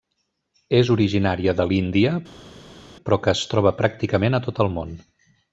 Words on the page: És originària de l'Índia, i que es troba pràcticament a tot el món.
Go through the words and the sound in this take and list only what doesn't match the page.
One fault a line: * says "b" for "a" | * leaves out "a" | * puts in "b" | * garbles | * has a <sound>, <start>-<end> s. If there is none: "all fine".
* says "però" for "i"